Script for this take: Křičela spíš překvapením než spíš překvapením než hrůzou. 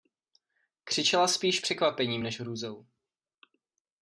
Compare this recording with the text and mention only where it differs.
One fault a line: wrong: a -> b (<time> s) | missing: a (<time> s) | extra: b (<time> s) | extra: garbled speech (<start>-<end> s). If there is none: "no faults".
missing: spíš překvapením než (2.4 s)